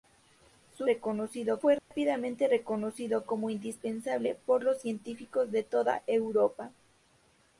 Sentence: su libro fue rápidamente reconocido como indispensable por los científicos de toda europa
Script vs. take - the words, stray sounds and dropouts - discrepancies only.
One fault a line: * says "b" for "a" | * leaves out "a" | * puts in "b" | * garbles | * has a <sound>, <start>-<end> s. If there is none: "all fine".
* says "reconocido" for "libro"
* has a dropout, 1.8-1.9 s